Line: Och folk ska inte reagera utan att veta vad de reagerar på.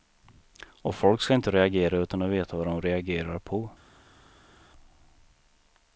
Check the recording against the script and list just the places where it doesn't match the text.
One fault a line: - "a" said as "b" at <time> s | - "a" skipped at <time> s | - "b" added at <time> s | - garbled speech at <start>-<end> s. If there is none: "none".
none